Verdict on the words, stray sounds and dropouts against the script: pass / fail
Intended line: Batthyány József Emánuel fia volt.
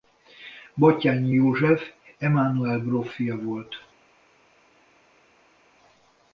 fail